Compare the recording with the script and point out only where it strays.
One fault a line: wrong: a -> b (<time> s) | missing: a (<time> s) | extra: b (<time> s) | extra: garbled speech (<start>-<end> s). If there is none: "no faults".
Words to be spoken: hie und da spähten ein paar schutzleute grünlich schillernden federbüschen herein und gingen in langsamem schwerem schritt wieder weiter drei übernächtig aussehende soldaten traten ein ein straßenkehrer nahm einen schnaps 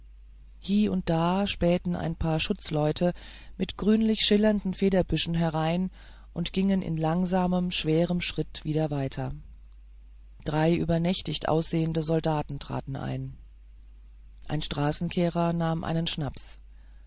extra: mit (3.6 s)